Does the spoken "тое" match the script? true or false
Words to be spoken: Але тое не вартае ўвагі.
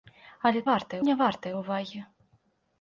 false